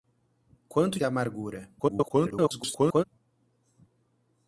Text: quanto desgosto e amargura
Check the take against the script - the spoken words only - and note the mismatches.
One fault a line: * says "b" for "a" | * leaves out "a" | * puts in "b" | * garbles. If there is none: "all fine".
* leaves out "desgosto"
* garbles